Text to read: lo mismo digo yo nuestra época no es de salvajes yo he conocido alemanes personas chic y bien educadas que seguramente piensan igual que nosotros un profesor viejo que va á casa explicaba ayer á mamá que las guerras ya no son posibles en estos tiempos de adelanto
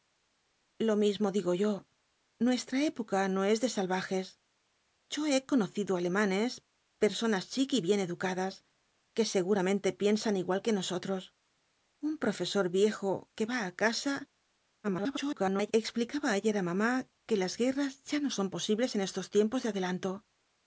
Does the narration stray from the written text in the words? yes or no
yes